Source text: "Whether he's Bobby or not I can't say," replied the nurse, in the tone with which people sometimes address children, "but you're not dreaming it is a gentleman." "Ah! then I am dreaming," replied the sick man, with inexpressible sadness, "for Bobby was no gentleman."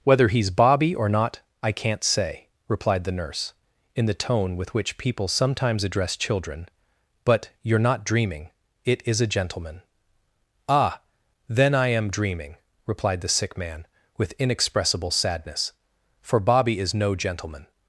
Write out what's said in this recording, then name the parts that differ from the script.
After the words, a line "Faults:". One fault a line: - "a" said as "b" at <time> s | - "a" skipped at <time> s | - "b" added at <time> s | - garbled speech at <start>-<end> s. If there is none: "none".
"Whether he's Bobby or not I can't say," replied the nurse, in the tone with which people sometimes address children, "but you're not dreaming it is a gentleman." "Ah! then I am dreaming," replied the sick man, with inexpressible sadness, "for Bobby is no gentleman."
Faults:
- "was" said as "is" at 16.8 s